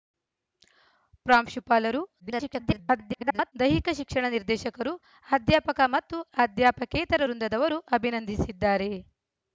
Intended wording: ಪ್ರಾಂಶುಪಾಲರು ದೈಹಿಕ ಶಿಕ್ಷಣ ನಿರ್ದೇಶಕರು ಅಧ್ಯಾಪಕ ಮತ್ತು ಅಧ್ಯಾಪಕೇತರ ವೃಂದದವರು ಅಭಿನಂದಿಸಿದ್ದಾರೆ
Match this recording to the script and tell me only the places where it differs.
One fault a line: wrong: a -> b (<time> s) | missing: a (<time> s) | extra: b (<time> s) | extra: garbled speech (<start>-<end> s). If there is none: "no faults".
extra: garbled speech (2.2-3.5 s)